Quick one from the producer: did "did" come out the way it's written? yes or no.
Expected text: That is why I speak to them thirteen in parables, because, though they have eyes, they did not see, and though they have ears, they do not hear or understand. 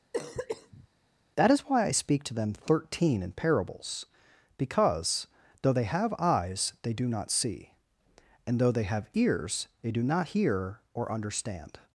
no